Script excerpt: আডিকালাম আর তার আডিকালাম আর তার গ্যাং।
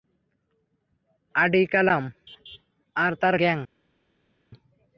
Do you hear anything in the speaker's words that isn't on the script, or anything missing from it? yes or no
yes